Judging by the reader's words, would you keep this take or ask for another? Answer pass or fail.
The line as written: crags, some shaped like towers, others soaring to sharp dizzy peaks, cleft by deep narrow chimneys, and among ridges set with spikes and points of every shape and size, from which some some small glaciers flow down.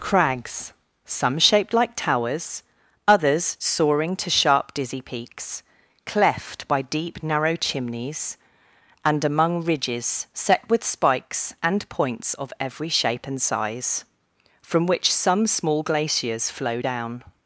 fail